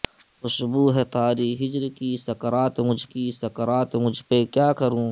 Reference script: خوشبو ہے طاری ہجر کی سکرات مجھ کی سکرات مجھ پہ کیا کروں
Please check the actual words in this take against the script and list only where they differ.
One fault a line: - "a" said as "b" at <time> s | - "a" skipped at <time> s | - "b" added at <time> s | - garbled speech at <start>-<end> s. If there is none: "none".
none